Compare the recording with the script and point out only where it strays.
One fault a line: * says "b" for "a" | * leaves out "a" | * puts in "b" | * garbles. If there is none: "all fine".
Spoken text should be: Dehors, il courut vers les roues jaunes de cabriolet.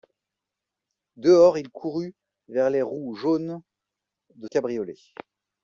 all fine